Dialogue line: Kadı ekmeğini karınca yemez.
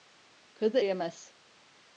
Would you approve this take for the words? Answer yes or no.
no